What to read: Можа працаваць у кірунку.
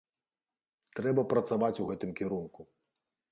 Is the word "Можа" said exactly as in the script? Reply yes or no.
no